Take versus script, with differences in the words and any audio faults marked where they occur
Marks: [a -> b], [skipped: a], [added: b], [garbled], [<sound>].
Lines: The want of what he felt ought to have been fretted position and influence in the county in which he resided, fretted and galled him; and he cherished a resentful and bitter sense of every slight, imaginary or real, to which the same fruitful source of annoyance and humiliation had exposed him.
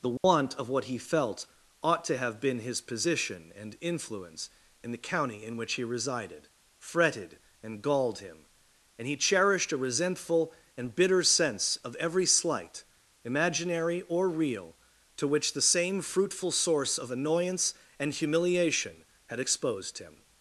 The want [dropout] of what he felt ought to have been [fretted -> his] position and influence in the county in which he resided, fretted and galled him; and he cherished a resentful and bitter sense of every slight, imaginary or real, to which the same fruitful source of annoyance and humiliation had exposed him.